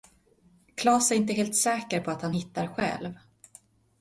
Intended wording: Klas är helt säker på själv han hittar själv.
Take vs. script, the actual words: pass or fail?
fail